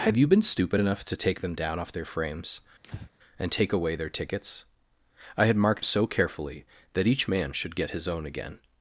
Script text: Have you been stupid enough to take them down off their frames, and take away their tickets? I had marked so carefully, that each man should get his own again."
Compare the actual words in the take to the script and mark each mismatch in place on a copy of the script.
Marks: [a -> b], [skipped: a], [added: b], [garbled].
Have you been stupid enough to take them down off their frames, and take away their tickets? I had marked so carefully, that each man should get his own again."